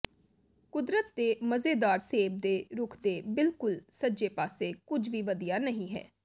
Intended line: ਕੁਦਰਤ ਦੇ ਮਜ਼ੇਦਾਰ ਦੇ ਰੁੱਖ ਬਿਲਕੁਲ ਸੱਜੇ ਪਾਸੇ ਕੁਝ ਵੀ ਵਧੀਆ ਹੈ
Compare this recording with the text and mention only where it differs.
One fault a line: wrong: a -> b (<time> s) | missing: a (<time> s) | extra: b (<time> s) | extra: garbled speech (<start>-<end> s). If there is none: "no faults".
extra: ਸੇਬ (2.0 s)
extra: ਦੇ (3.0 s)
extra: ਨਹੀਂ (5.6 s)